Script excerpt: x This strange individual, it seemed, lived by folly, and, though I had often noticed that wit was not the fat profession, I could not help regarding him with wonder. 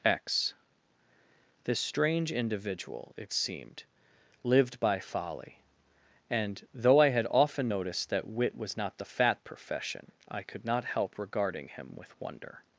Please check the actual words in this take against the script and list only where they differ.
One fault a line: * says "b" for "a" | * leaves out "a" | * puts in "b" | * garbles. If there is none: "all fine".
all fine